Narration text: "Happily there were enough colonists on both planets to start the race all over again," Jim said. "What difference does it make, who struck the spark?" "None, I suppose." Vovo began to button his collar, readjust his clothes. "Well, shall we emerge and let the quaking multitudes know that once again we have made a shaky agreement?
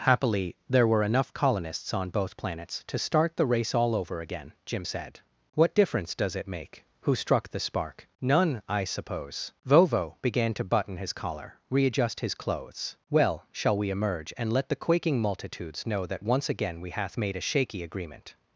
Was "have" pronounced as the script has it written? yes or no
no